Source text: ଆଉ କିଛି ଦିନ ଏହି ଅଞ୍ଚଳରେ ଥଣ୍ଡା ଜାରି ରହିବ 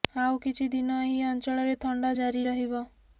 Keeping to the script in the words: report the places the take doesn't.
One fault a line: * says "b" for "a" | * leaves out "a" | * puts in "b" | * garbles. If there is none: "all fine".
all fine